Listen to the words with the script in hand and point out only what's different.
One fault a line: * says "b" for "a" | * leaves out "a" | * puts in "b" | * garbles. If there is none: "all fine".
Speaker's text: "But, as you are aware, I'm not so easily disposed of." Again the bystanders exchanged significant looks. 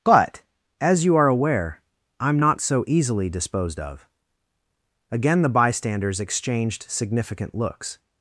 all fine